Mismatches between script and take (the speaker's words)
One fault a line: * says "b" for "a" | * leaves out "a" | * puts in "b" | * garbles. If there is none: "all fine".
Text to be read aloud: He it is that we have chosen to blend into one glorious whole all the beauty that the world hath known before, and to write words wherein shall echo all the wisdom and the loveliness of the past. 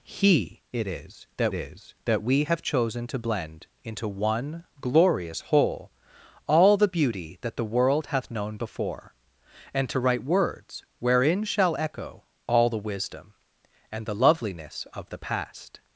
* puts in "is that"